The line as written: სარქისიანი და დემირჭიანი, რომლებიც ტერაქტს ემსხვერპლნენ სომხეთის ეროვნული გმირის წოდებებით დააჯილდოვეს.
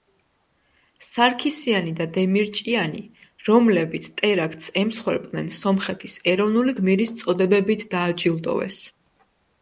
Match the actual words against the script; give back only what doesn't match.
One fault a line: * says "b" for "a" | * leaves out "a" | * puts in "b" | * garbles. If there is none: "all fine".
all fine